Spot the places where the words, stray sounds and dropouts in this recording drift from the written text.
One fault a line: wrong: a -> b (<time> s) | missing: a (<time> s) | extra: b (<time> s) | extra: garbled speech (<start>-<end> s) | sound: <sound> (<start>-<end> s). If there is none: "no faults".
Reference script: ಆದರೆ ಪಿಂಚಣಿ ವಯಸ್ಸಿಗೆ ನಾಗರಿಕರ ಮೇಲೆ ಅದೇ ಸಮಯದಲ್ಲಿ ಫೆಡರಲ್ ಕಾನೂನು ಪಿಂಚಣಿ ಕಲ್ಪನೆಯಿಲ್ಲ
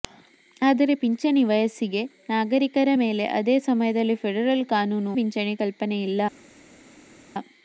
no faults